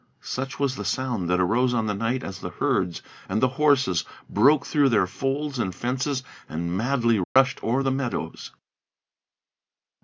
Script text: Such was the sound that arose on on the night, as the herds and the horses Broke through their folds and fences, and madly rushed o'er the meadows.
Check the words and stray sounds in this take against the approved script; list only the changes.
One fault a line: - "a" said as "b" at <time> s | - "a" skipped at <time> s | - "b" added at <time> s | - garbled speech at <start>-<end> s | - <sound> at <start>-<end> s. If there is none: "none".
- "on" skipped at 1.9 s
- dropout at 7.2-7.4 s